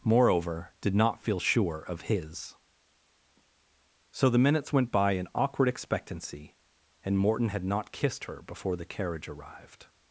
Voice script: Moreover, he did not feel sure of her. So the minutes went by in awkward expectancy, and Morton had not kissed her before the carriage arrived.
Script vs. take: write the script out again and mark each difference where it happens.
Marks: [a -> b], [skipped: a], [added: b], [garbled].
Moreover, [skipped: he] did not feel sure of [her. -> his] So the minutes went by in awkward expectancy, and Morton had not kissed her before the carriage arrived.